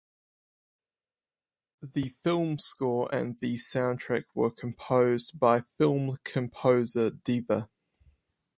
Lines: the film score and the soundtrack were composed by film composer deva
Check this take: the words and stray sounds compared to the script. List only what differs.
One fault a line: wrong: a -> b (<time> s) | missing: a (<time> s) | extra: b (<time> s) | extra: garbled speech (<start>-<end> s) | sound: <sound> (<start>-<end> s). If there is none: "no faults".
no faults